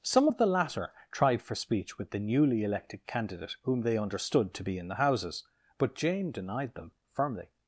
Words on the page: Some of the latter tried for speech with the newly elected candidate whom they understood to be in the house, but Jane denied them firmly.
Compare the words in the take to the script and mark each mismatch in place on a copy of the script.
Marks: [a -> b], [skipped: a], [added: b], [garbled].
Some of the latter tried for speech with the newly elected candidate whom they understood to be in the [house, -> houses] but Jane denied them firmly.